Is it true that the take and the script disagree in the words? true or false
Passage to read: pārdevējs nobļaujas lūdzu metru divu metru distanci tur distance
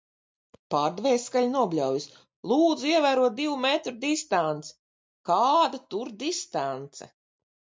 true